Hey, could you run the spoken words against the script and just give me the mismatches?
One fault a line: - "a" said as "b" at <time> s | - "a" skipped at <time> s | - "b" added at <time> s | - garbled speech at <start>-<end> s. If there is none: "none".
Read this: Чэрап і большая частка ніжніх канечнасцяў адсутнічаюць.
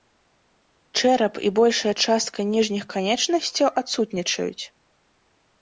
none